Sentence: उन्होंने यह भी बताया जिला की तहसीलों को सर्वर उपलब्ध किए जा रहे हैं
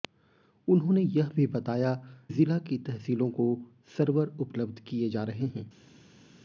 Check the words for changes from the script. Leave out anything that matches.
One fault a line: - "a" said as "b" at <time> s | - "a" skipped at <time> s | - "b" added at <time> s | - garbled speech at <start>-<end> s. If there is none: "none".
none